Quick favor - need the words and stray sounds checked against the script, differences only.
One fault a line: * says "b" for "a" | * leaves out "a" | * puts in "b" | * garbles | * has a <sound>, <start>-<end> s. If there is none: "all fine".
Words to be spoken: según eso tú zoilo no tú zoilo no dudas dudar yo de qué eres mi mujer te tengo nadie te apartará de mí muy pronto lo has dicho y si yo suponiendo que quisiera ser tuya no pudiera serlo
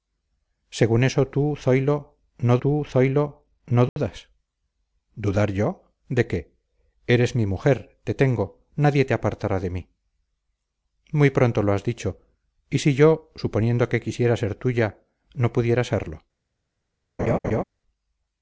* has a dropout, 3.9-4.0 s
* has a laugh, 17.2-17.6 s